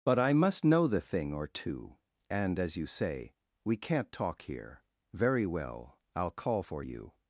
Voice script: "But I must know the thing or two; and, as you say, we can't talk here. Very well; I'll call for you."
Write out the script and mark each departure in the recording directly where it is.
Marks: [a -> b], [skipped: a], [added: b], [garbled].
"But I must know the thing or two; and, as you say, we can't talk here. Very well; I'll call for you."